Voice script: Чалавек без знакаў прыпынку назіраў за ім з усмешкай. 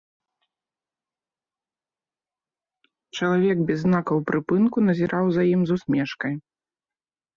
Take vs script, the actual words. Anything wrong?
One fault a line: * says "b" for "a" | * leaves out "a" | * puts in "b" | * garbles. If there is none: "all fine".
all fine